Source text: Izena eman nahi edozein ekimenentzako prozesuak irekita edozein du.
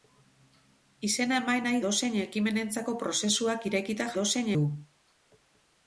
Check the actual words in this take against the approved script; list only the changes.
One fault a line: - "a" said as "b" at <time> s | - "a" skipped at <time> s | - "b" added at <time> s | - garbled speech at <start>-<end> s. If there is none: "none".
none